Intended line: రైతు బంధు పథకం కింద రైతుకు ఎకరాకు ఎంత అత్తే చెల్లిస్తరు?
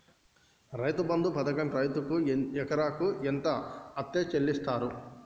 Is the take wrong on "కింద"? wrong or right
wrong